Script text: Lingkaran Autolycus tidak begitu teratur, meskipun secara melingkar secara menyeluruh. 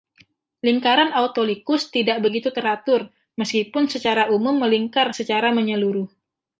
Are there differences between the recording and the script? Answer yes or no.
yes